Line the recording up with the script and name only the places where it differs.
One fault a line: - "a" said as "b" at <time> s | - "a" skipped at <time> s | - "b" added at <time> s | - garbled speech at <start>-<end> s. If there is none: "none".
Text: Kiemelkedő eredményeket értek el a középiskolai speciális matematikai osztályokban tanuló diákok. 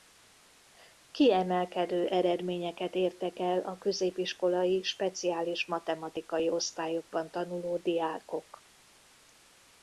none